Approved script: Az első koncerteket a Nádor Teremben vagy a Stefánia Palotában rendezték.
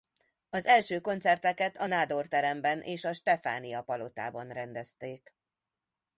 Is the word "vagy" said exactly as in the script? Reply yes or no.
no